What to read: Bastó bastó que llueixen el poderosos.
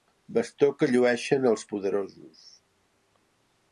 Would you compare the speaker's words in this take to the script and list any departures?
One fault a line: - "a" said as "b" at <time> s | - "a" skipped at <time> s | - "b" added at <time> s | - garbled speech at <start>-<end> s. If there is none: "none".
- "bastó" skipped at 0.7 s
- "el" said as "els" at 1.5 s